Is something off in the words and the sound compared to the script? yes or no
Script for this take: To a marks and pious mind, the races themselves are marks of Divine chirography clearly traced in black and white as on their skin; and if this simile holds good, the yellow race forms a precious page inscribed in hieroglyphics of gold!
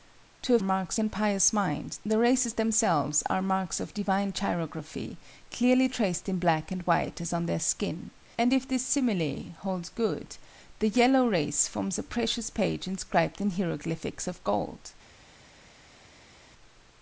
no